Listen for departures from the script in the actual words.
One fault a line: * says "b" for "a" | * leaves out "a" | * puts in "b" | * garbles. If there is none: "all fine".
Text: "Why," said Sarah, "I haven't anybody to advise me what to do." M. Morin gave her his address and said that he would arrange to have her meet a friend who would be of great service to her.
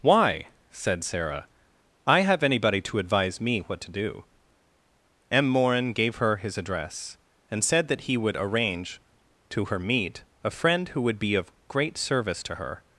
* says "have" for "haven't"
* leaves out "have"